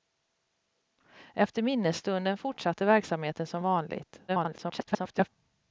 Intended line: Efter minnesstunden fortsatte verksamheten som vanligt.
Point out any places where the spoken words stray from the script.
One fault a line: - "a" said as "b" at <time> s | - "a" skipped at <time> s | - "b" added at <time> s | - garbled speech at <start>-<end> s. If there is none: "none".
- garbled speech at 4.3-5.3 s